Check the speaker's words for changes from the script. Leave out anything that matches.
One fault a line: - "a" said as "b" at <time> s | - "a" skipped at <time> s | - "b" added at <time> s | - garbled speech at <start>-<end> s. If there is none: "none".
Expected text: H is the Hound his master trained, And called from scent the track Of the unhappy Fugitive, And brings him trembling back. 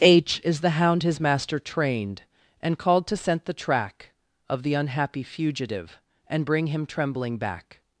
- "from" said as "to" at 3.1 s
- "brings" said as "bring" at 6.4 s